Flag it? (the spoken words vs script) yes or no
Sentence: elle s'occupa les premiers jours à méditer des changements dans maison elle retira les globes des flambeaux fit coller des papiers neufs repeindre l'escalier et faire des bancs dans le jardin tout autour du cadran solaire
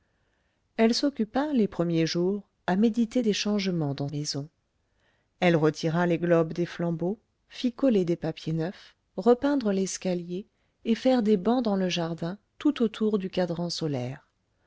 no